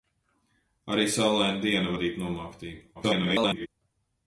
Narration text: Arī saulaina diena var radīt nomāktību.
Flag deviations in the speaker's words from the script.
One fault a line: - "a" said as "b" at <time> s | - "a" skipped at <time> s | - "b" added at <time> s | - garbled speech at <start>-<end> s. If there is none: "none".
- "var" skipped at 1.9 s
- garbled speech at 2.9-3.7 s